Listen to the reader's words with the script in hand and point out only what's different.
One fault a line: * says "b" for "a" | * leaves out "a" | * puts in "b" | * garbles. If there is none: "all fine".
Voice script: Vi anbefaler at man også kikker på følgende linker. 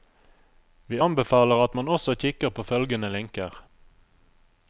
all fine